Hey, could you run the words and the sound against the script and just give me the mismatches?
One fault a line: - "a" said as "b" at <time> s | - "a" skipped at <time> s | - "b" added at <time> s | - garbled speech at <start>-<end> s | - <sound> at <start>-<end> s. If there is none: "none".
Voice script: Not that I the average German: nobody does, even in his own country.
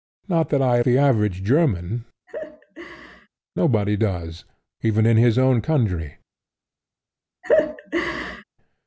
- laugh at 2.3-3.3 s
- laugh at 7.4-8.4 s